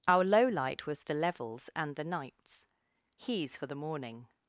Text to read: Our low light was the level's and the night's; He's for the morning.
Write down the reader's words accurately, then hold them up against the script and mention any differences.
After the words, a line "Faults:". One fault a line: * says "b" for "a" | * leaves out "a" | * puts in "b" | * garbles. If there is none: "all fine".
Our low light was the level's and the night's; He's for the morning.
Faults:
all fine